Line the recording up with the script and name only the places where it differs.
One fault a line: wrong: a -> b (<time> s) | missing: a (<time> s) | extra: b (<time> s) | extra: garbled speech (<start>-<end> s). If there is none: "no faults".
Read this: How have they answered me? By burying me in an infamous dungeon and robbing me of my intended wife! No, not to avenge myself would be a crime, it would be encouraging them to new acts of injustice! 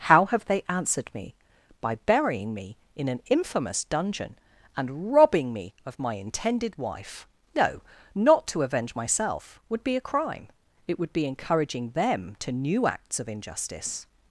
no faults